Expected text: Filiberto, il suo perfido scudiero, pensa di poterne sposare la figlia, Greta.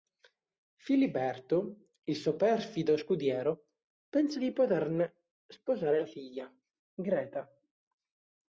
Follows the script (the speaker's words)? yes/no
yes